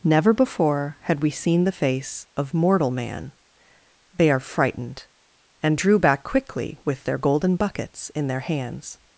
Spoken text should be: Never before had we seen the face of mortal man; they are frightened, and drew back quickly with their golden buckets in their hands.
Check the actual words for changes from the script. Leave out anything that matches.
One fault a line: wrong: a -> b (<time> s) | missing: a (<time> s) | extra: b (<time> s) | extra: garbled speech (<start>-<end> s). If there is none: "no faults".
no faults